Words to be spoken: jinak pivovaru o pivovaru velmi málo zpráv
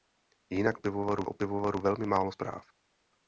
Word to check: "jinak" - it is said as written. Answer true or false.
true